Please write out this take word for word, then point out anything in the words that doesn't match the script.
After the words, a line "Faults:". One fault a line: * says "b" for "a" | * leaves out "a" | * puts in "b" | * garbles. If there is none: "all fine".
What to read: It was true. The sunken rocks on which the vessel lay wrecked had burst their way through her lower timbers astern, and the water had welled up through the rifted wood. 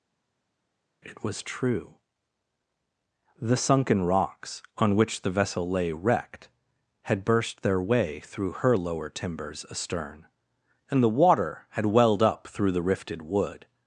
It was true. The sunken rocks on which the vessel lay wrecked had burst their way through her lower timbers astern, and the water had welled up through the rifted wood.
Faults:
all fine